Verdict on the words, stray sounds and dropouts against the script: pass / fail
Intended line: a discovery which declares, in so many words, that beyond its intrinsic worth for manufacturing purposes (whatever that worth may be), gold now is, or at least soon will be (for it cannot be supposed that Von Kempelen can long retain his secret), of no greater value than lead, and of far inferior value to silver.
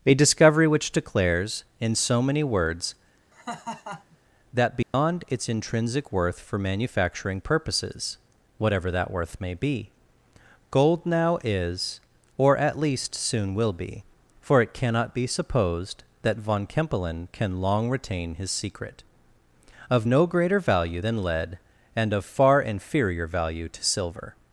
fail